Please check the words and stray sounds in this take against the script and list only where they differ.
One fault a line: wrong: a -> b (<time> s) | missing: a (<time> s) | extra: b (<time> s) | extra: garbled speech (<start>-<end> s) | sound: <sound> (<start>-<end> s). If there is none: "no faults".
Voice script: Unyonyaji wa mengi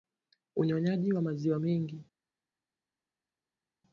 extra: maziwa (1.2 s)